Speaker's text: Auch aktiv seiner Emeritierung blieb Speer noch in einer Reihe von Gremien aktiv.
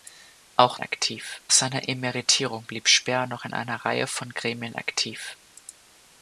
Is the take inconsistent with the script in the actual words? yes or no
no